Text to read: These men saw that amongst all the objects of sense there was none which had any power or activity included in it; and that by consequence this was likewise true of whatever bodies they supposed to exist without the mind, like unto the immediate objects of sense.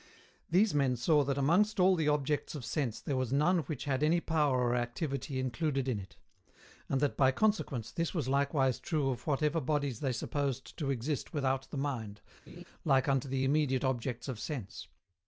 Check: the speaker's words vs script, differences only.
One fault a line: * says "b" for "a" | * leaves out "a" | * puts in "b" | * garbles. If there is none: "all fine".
all fine